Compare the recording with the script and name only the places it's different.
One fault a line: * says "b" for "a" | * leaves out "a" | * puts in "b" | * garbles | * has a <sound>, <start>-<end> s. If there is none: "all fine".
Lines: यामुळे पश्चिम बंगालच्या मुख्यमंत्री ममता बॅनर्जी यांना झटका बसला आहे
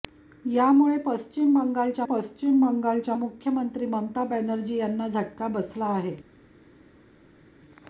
* puts in "पश्चिम बंगालच्या"